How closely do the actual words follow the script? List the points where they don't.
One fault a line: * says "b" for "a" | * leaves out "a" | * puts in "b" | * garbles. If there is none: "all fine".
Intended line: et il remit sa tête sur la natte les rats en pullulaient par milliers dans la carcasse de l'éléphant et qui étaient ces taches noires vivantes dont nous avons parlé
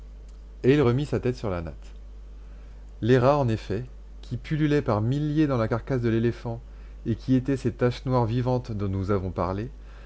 * puts in "effet qui"